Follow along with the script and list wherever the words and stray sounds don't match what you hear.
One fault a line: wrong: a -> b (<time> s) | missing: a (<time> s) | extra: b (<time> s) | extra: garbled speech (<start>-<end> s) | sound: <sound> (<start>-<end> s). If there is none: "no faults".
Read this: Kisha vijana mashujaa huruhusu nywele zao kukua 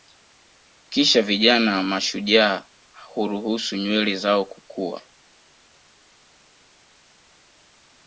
no faults